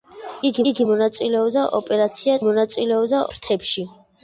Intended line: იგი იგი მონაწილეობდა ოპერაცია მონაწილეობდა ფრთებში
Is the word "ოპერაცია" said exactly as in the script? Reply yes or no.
yes